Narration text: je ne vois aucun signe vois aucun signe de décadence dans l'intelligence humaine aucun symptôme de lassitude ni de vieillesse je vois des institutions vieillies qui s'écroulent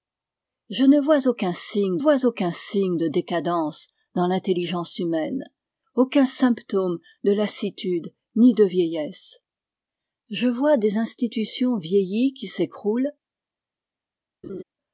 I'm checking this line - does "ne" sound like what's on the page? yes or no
yes